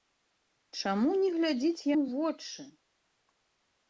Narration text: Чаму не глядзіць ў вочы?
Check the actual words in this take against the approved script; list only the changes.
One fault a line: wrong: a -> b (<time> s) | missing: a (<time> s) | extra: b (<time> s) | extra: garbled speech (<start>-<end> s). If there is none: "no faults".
no faults